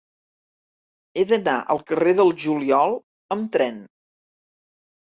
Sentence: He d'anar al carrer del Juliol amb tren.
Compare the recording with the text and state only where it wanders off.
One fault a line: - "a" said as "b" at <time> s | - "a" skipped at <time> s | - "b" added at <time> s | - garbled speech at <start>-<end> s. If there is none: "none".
none